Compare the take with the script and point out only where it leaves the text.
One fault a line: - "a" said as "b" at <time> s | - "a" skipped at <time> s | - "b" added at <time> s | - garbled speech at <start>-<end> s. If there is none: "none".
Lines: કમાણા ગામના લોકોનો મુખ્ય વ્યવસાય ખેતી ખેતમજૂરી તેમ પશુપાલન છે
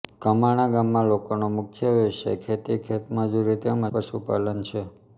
none